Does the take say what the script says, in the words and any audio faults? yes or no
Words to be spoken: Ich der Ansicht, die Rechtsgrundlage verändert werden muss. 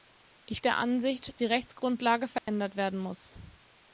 no